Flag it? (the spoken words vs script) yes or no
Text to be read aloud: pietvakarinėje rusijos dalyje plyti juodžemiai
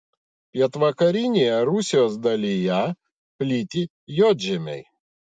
no